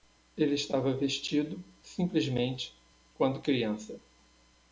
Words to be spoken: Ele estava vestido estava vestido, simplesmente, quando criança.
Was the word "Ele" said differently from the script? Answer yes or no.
no